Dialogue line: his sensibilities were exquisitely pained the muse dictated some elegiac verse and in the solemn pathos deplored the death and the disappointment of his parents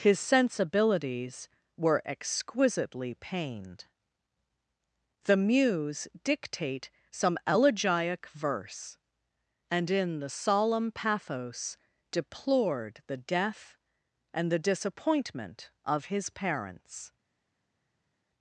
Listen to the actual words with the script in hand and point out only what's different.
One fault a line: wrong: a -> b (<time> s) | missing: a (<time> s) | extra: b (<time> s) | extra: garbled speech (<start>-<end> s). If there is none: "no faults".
wrong: dictated -> dictate (6.2 s)